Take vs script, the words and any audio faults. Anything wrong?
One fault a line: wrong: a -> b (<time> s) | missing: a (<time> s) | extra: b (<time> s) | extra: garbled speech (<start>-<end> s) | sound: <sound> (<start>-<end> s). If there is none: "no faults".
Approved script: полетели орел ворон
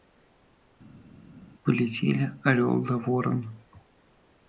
extra: да (2.8 s)